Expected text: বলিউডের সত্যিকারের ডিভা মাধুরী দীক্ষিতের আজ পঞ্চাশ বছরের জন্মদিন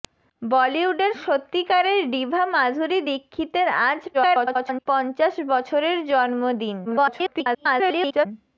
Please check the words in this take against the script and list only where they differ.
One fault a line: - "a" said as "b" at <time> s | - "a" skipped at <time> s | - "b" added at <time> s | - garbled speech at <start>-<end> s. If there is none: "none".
- garbled speech at 4.1-4.9 s
- garbled speech at 6.8-8.3 s